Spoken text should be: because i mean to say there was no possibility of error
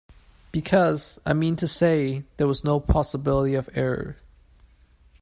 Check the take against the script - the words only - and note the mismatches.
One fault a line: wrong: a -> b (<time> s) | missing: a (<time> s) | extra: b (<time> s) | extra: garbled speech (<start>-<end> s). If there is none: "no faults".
no faults